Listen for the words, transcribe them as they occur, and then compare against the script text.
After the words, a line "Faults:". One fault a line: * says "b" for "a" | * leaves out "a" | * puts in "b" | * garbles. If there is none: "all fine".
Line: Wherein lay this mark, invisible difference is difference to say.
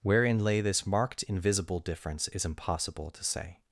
Wherein lay this marked, invisible difference is impossible to say.
Faults:
* says "marked" for "mark"
* says "impossible" for "difference"